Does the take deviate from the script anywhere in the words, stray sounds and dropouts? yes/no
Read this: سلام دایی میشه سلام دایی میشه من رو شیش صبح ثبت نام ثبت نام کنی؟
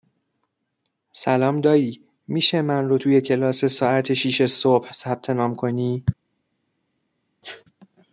yes